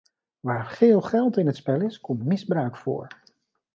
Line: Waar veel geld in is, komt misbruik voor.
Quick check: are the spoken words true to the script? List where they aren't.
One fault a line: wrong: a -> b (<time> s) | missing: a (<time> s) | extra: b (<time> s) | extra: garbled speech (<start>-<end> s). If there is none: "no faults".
extra: het spel (1.5 s)